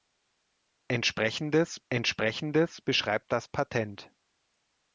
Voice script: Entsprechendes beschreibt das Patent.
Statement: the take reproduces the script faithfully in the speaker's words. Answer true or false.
false